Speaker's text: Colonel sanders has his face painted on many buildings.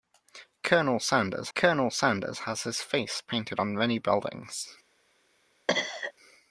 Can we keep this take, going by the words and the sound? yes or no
no